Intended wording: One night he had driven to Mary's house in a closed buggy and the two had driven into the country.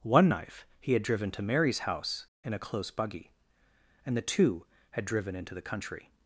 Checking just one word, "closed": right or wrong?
wrong